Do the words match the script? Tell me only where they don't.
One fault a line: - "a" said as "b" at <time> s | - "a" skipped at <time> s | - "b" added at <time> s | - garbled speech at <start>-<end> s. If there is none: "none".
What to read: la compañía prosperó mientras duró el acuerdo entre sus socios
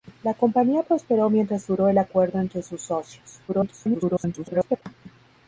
- garbled speech at 3.5-4.8 s